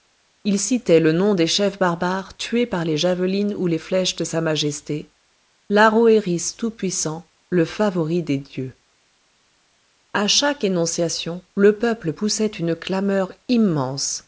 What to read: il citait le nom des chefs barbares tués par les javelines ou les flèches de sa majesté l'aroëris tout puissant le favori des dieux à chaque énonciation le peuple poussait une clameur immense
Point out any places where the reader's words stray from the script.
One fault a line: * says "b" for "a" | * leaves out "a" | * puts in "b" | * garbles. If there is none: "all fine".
all fine